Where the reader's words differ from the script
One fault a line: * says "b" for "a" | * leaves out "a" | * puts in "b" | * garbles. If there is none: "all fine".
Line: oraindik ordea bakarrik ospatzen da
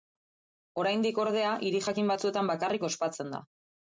* puts in "hiri jakin batzuetan"